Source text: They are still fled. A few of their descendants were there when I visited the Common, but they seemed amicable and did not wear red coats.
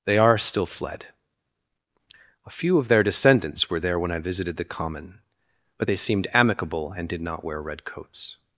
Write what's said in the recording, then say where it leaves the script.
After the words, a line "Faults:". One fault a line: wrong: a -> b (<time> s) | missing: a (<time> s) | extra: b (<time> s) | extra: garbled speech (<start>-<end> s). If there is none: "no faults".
They are still fled. A few of their descendants were there when I visited the Common, but they seemed amicable and did not wear red coats.
Faults:
no faults